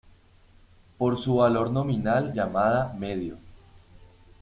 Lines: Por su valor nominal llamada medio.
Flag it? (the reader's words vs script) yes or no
no